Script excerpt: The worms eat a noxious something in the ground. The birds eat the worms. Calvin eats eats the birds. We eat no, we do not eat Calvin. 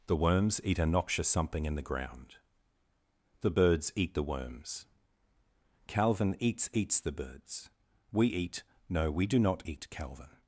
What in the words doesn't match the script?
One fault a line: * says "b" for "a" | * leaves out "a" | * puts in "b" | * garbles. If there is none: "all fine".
all fine